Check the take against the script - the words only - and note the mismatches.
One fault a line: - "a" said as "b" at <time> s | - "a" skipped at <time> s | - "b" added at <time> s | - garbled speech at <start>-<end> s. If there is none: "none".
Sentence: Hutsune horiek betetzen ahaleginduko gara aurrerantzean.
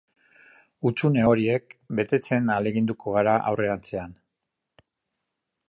none